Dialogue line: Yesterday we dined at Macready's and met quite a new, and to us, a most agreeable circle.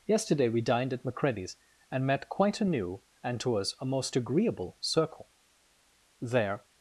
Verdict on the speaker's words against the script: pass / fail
fail